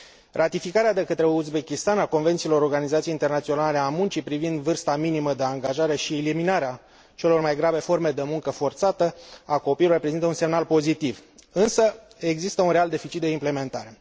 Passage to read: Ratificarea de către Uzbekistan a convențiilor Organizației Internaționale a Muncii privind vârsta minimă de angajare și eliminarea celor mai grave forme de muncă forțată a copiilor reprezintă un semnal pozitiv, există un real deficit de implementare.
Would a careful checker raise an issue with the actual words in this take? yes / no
yes